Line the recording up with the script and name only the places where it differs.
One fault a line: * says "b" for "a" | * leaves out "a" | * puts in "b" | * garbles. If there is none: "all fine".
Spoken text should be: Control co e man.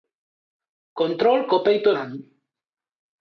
* puts in "peito"